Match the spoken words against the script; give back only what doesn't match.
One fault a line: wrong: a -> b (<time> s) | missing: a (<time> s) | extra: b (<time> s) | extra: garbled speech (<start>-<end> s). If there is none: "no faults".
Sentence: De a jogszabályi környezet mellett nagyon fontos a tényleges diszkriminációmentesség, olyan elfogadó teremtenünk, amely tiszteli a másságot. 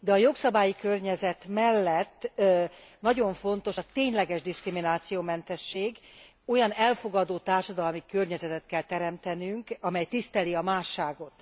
extra: társadalmi környezetet kell (7.4 s)